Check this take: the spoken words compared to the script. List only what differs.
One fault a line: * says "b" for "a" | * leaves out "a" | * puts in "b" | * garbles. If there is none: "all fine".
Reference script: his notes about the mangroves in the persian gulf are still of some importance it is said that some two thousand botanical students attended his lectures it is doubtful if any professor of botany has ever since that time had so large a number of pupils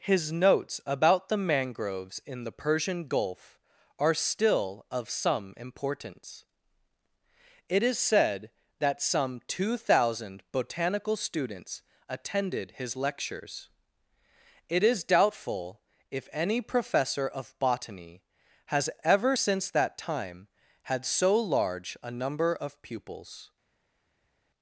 all fine